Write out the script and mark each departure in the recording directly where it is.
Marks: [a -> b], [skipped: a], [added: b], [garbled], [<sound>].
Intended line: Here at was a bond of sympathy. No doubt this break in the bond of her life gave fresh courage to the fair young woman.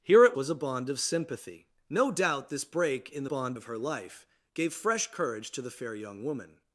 Here at was a bond of sympathy. No doubt this break in the bond of her life gave fresh courage to the fair young woman.